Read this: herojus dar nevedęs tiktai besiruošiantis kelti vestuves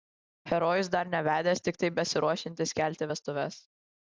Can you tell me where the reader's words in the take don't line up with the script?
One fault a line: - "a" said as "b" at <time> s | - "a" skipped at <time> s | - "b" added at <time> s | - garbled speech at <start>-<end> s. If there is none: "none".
none